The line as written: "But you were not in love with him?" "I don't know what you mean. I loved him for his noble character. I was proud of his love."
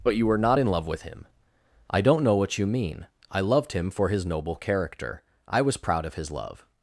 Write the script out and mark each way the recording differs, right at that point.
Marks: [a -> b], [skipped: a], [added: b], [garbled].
"But you were not in love with him?" "I don't know what you mean. I loved him for his noble character. I was proud of his love."